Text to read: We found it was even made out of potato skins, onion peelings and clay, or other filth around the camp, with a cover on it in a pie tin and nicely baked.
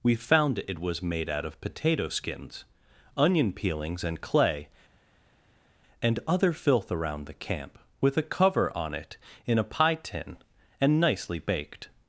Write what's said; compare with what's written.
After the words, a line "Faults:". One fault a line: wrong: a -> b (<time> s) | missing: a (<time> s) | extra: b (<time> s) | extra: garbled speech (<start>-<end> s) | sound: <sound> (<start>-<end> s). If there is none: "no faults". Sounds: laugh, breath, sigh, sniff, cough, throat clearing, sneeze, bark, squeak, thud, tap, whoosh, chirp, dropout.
We found it was made out of potato skins, onion peelings and clay, and other filth around the camp, with a cover on it in a pie tin and nicely baked.
Faults:
missing: even (1.0 s)
wrong: or -> and (6.0 s)